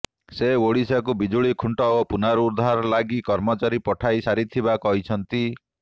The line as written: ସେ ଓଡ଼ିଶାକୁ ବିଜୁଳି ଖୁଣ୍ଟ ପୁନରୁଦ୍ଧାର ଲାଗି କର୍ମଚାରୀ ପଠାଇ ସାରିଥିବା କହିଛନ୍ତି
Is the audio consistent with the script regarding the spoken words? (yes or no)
no